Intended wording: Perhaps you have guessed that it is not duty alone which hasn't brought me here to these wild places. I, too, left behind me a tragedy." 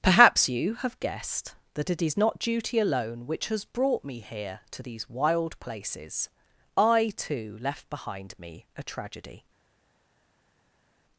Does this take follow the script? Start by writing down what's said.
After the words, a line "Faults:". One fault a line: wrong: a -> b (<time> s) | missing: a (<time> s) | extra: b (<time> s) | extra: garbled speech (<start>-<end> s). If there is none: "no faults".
Perhaps you have guessed that it is not duty alone which has brought me here to these wild places. I, too, left behind me a tragedy."
Faults:
wrong: hasn't -> has (3.5 s)